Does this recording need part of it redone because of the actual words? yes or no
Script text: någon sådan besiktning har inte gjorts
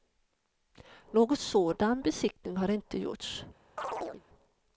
no